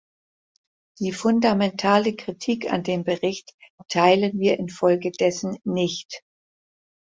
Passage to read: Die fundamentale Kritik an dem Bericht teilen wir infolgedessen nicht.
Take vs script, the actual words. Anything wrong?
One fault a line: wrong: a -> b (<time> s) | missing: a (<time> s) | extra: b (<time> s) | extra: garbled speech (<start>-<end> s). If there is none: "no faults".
no faults